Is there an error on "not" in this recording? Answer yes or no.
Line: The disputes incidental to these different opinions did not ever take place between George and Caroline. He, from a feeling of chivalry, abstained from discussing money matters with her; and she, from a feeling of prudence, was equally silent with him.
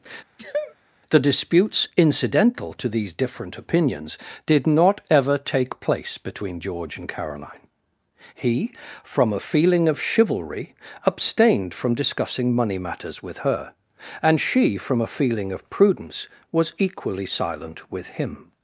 no